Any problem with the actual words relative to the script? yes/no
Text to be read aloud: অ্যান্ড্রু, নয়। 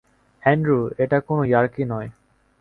yes